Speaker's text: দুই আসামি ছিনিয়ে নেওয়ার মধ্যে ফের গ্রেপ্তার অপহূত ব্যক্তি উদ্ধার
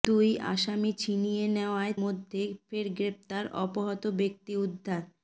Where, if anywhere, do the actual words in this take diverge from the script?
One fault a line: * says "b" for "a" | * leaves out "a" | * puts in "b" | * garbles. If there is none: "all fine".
all fine